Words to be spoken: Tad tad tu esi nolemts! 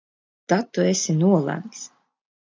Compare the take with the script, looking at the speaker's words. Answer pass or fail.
fail